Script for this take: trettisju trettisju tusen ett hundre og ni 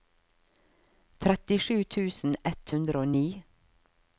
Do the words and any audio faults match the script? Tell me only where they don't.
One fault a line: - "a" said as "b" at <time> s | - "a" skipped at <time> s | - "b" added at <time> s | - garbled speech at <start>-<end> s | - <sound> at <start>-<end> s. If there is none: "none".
- "trettisju" skipped at 1.8 s